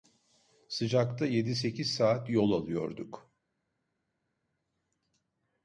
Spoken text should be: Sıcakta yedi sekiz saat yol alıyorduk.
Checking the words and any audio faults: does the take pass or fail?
pass